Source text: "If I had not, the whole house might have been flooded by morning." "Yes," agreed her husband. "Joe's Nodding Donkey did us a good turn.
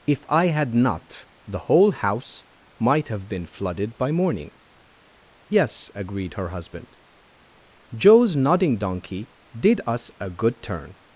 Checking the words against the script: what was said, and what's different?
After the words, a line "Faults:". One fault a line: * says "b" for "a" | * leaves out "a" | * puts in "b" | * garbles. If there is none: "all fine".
"If I had not, the whole house might have been flooded by morning." "Yes," agreed her husband. "Joe's Nodding Donkey did us a good turn.
Faults:
all fine